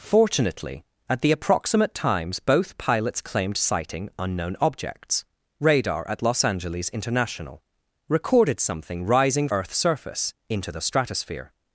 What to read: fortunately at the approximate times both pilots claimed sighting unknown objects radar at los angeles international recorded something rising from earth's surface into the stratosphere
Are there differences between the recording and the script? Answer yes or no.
yes